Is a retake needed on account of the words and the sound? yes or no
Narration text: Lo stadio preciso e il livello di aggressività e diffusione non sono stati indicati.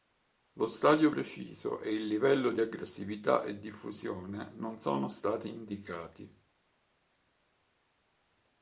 no